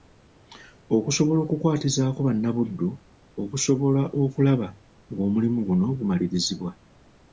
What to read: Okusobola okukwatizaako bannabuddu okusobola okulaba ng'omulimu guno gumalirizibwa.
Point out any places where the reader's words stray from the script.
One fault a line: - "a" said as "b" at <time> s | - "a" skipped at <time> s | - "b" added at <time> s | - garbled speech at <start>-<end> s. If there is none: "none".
none